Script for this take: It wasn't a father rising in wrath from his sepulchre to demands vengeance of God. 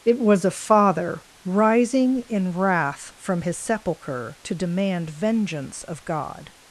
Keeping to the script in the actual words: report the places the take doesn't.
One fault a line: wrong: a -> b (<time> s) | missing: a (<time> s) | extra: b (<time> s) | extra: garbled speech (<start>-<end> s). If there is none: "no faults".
wrong: wasn't -> was (0.2 s)
wrong: demands -> demand (4.5 s)